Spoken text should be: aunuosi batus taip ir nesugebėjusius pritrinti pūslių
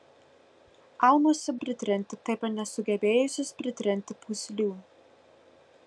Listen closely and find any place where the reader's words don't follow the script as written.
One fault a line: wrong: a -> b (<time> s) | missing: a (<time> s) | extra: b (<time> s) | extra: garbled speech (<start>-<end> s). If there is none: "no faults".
wrong: batus -> pritrinti (1.6 s)